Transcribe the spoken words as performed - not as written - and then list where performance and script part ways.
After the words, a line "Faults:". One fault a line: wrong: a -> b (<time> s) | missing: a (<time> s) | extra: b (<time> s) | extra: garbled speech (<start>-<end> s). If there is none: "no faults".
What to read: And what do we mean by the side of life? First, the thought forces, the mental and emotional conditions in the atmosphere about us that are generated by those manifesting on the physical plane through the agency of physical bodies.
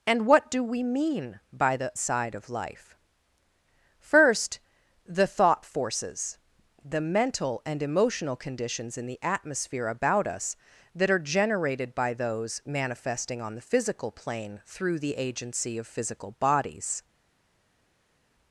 And what do we mean by the side of life? First, the thought forces, the mental and emotional conditions in the atmosphere about us that are generated by those manifesting on the physical plane through the agency of physical bodies.
Faults:
no faults